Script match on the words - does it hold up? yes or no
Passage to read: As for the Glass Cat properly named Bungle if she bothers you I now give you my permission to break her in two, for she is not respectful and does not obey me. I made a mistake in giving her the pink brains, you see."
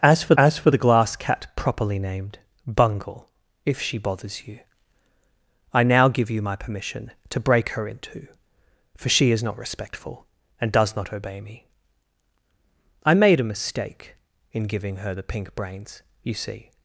no